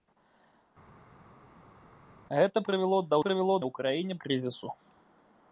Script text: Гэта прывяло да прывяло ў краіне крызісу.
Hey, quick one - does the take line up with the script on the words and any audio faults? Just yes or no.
yes